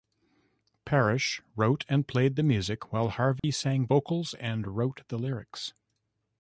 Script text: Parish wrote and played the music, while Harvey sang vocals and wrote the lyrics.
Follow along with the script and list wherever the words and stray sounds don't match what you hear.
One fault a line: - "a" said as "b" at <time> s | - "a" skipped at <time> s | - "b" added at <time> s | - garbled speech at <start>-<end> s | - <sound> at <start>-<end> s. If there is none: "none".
- dropout at 3.4-3.4 s